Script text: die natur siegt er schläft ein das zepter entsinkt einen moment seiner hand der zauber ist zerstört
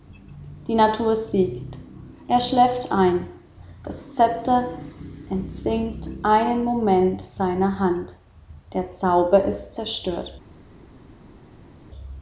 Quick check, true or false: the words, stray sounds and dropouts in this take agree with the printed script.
true